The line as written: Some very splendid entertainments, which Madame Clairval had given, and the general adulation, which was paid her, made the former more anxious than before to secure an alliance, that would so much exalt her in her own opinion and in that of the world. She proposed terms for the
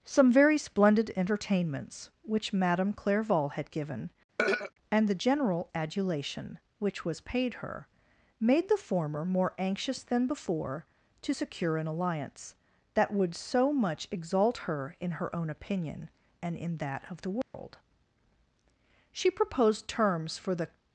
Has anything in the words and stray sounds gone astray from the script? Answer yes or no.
yes